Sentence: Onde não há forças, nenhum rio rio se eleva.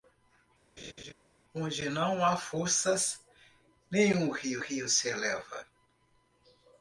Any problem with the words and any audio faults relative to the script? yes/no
yes